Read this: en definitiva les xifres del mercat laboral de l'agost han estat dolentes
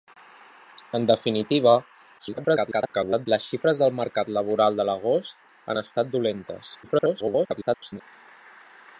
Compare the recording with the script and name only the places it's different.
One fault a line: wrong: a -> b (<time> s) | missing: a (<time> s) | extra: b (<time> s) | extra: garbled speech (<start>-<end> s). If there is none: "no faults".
extra: garbled speech (2.2-3.3 s)
extra: garbled speech (6.8-8.0 s)